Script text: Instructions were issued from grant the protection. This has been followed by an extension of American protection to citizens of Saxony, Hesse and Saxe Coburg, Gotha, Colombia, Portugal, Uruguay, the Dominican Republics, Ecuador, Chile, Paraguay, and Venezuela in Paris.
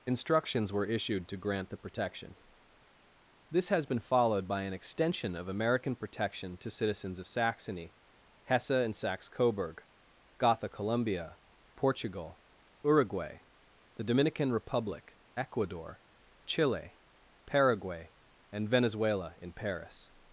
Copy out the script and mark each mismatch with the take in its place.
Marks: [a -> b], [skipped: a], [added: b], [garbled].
Instructions were issued [from -> to] grant the protection. This has been followed by an extension of American protection to citizens of Saxony, Hesse and Saxe Coburg, Gotha, Colombia, Portugal, Uruguay, the Dominican [Republics, -> Republic] Ecuador, Chile, Paraguay, and Venezuela in Paris.